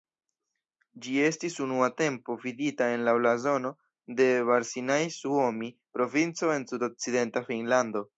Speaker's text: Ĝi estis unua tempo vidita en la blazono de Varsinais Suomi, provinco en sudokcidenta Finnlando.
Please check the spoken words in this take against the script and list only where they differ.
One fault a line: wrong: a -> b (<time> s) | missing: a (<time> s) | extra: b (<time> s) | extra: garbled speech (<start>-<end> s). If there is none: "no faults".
no faults